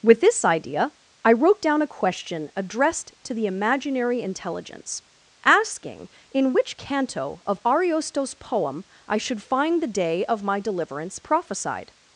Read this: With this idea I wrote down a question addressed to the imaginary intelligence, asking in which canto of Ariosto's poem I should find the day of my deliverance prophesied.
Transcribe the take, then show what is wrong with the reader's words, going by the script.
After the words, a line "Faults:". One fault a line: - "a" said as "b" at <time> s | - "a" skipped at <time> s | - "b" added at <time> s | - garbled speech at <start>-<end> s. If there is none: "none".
With this idea I wrote down a question addressed to the imaginary intelligence, asking in which canto of Ariosto's poem I should find the day of my deliverance prophesied.
Faults:
none